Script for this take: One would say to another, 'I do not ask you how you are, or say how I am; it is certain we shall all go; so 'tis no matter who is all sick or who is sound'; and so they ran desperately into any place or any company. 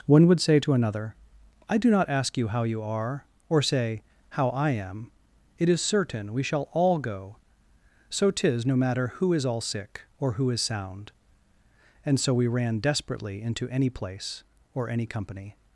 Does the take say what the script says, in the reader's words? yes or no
no